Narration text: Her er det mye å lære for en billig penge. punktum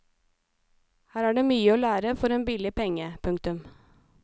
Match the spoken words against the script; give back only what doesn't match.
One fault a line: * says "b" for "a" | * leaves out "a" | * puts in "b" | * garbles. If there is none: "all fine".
all fine